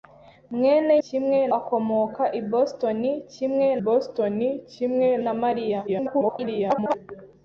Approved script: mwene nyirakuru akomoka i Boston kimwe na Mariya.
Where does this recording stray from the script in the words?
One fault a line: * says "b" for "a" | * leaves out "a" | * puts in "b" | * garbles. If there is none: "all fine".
* says "kimwe" for "nyirakuru"
* puts in "Boston kimwe"
* garbles